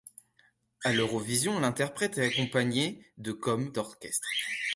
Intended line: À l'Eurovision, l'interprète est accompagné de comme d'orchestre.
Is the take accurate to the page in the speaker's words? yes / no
yes